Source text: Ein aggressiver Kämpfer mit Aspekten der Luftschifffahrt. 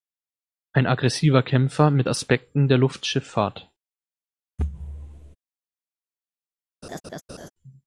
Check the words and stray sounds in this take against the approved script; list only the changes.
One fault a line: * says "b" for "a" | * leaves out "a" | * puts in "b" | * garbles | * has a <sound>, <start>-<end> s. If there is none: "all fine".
* has a thud, 4.6-5.4 s
* has a laugh, 6.8-7.5 s